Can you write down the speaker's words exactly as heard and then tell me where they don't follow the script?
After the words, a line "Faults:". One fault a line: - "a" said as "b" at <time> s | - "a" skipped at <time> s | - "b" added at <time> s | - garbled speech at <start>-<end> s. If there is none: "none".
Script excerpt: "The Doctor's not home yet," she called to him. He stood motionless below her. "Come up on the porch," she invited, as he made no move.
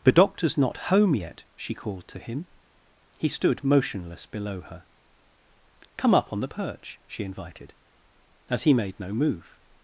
"The Doctor's not home yet," she called to him. He stood motionless below her. "Come up on the perch," she invited, as he made no move.
Faults:
- "porch" said as "perch" at 6.5 s